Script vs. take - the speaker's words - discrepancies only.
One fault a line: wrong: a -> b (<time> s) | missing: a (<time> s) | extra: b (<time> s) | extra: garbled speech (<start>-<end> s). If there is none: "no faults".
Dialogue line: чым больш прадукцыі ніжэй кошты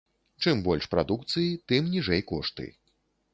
extra: тым (1.7 s)